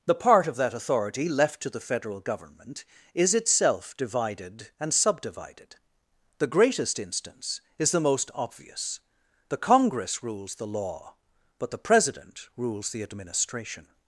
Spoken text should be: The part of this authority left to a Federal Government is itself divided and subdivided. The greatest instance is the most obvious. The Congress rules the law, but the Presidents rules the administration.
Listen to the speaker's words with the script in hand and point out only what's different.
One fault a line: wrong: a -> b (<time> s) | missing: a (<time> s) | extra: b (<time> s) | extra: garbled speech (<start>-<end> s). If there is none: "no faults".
wrong: this -> that (0.6 s)
wrong: a -> the (1.7 s)
wrong: Presidents -> President (11.8 s)